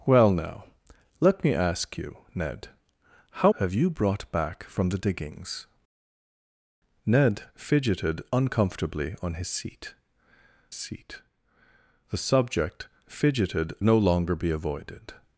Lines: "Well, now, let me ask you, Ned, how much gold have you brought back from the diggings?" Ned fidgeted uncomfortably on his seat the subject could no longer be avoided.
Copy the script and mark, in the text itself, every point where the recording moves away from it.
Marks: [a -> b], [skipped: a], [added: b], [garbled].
"Well, now, let me ask you, Ned, how [skipped: much gold] have you brought back from the diggings?" Ned fidgeted uncomfortably on his seat [added: seat] the subject [could -> fidgeted] no longer be avoided.